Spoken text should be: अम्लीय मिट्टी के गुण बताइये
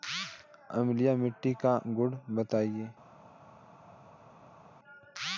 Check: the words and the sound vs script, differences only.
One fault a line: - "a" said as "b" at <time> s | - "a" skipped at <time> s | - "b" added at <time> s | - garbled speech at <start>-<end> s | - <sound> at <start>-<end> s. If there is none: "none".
- "के" said as "का" at 1.6 s